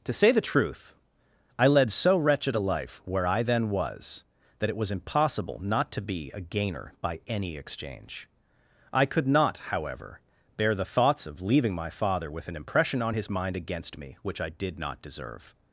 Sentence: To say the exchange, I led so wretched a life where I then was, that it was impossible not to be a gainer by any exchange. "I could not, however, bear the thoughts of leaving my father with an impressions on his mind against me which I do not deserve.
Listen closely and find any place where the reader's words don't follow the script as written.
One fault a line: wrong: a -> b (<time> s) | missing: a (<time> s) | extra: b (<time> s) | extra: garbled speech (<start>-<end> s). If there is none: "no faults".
wrong: exchange -> truth (0.4 s)
wrong: impressions -> impression (12.6 s)
wrong: do -> did (14.5 s)